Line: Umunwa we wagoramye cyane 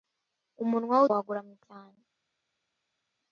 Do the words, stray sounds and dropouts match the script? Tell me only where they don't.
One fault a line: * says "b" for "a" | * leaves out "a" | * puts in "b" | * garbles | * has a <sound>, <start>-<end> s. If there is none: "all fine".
all fine